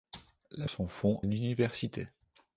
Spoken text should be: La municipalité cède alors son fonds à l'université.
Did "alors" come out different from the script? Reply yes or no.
yes